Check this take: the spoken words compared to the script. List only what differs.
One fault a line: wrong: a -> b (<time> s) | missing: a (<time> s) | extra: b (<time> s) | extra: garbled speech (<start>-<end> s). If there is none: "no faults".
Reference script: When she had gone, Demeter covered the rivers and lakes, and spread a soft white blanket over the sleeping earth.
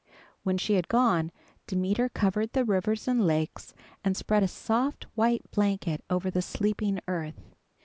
no faults